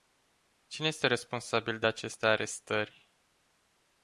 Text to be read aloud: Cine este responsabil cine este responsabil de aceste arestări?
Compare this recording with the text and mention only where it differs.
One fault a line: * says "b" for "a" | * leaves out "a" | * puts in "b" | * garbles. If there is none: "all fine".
* leaves out "cine este responsabil"